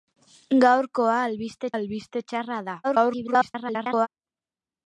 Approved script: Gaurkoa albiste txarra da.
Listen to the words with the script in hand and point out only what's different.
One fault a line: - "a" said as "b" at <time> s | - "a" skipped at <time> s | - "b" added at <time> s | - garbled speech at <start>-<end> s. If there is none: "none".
- "albiste" added at 1.7 s
- garbled speech at 2.8-4.1 s